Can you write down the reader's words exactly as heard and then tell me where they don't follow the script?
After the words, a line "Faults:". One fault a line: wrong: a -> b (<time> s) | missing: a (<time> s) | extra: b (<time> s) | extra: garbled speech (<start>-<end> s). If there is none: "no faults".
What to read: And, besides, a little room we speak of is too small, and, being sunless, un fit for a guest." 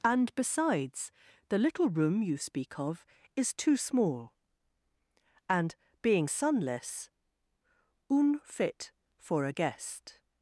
And, besides, the little room you speak of is too small, and, being sunless, un fit for a guest."
Faults:
wrong: a -> the (1.5 s)
wrong: we -> you (2.2 s)